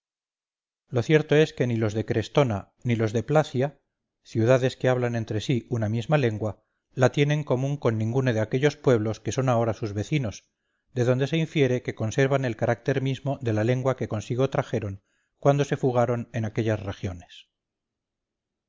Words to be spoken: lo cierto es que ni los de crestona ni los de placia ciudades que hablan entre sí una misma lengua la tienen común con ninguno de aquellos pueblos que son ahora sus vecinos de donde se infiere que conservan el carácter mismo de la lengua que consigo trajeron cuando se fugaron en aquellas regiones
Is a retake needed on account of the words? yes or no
no